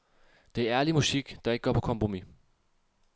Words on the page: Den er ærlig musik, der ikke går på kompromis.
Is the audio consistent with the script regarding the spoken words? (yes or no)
no